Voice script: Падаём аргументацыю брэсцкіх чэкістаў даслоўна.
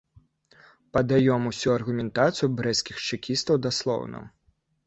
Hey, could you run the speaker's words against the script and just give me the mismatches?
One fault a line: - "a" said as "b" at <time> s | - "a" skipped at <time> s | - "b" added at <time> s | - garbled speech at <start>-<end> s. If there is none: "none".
- "усю" added at 1.5 s